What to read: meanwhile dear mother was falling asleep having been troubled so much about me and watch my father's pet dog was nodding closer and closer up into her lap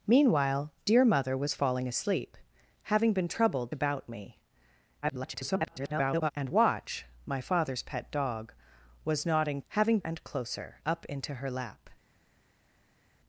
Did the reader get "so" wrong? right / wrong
wrong